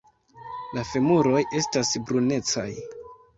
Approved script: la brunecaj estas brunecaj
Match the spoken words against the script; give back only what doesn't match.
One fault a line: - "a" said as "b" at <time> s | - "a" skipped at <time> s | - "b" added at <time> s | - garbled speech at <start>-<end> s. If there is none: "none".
- "brunecaj" said as "femuroj" at 0.9 s